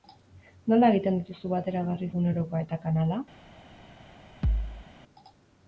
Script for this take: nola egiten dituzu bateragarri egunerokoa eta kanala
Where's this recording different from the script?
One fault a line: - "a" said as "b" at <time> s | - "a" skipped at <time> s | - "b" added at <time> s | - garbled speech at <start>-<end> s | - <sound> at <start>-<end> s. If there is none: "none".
- thud at 4.4-4.9 s